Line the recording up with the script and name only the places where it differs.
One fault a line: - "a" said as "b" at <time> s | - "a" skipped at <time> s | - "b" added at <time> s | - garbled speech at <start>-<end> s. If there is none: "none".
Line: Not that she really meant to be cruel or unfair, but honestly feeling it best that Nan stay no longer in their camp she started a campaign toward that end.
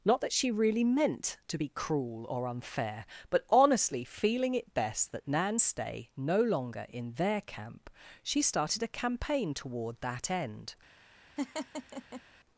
none